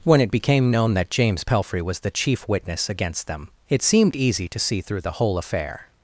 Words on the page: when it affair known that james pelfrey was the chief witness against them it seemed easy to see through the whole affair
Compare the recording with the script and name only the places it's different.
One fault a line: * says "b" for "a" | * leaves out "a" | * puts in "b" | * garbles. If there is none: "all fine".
* says "became" for "affair"